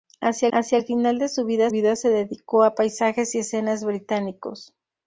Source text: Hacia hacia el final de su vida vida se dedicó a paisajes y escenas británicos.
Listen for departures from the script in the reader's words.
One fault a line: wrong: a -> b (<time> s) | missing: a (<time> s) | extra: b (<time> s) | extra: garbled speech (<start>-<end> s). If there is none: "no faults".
no faults